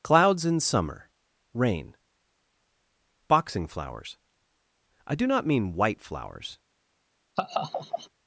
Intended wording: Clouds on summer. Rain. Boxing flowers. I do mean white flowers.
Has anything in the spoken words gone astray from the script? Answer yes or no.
yes